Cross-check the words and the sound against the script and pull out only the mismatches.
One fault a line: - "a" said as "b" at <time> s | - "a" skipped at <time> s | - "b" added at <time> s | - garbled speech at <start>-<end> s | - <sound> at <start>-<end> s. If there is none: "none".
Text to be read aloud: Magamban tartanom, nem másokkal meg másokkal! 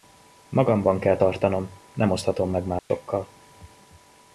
- "kell" added at 1.0 s
- "másokkal" said as "oszthatom" at 2.1 s
- dropout at 2.8-2.9 s